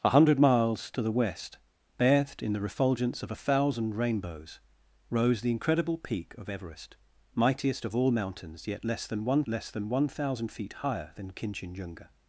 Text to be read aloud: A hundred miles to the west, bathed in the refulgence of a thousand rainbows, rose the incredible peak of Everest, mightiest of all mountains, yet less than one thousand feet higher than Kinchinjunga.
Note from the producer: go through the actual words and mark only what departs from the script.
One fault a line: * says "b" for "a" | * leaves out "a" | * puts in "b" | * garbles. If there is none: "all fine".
* puts in "less than one"